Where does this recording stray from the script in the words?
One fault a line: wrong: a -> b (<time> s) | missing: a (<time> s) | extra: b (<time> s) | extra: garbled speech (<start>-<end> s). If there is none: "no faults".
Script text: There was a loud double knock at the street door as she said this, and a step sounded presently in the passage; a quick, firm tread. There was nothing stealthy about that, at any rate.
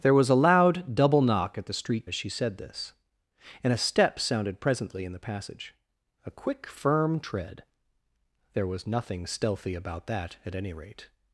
missing: door (2.1 s)